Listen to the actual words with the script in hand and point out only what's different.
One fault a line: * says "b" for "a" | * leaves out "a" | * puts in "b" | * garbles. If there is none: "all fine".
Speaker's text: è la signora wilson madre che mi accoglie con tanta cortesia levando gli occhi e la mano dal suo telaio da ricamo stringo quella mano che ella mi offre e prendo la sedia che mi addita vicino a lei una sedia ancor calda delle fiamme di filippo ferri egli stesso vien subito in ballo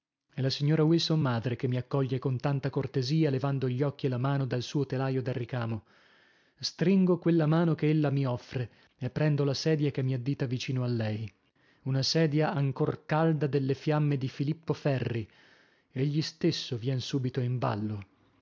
all fine